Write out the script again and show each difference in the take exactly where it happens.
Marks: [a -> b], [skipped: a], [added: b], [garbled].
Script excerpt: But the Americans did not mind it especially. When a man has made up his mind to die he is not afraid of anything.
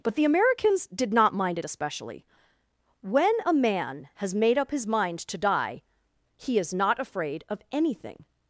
But the Americans did not mind it especially. When a man has made up his mind to die he is not afraid of anything.